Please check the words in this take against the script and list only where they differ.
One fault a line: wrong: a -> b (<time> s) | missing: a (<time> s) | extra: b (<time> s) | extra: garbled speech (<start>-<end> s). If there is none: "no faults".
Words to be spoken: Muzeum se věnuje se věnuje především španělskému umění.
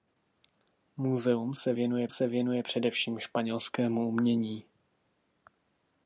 no faults